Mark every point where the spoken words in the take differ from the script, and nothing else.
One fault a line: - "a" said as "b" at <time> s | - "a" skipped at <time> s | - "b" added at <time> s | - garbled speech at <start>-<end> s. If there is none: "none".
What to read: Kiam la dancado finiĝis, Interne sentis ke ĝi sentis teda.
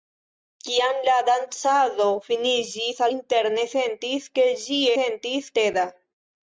none